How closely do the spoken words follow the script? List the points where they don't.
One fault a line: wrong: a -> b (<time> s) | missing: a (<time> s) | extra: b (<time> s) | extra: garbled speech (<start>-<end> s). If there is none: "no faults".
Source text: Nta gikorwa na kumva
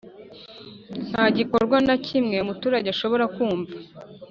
extra: kimwe umuturage ashobora (2.0 s)